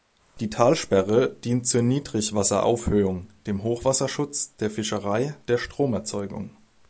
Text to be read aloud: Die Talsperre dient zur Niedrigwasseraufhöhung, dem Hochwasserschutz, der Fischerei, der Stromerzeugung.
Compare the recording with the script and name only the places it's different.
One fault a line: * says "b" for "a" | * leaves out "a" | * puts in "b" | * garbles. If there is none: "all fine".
all fine